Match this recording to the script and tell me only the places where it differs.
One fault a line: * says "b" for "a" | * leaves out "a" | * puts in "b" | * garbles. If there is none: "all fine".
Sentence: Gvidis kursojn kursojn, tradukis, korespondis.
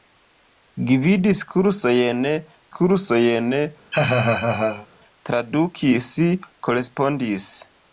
all fine